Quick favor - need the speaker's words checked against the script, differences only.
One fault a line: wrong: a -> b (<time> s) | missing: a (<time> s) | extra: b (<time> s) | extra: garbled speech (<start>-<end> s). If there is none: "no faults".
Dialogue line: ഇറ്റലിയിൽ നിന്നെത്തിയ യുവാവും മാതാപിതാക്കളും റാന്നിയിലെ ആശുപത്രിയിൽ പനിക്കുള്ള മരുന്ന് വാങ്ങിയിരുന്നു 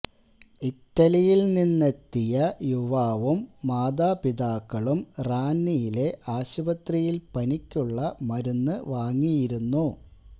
no faults